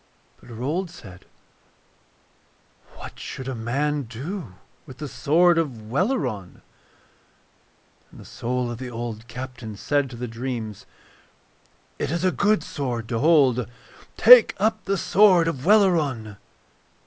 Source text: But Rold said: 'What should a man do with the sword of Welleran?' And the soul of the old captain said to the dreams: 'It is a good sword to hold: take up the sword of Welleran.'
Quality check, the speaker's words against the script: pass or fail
pass